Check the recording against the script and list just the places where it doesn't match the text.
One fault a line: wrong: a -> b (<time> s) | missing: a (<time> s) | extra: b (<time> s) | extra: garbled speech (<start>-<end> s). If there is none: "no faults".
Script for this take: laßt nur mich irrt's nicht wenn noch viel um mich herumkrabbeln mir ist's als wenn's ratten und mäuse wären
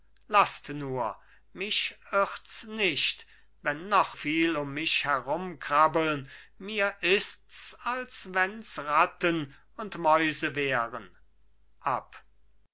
no faults